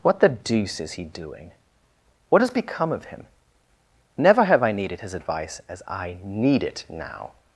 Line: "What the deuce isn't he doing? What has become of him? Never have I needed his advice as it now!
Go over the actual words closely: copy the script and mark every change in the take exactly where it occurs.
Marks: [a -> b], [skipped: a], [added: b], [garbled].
"What the deuce [isn't -> is] he doing? What has become of him? Never have I needed his advice as [added: I need] it now!